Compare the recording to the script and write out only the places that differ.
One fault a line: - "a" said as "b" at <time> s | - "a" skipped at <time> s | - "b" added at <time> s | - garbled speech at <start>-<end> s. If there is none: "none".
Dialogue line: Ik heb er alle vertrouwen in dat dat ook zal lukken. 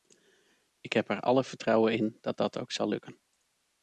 none